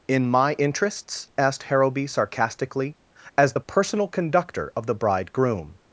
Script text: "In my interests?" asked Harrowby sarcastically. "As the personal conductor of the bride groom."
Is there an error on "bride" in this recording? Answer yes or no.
no